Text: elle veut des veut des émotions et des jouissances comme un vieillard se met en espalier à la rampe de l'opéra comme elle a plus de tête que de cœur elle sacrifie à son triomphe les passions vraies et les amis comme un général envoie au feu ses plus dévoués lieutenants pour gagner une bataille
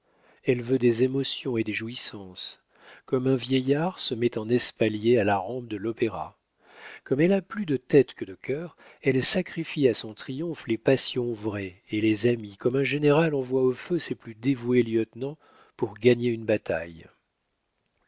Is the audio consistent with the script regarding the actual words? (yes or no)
no